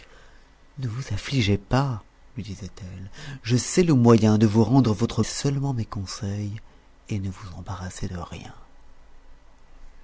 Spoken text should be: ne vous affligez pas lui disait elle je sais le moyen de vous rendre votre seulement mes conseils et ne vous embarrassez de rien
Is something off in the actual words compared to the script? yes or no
no